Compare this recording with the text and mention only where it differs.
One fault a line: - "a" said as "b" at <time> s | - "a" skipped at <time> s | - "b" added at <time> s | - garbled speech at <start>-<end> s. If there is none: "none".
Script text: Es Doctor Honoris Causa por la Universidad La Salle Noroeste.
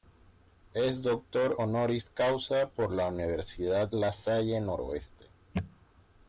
none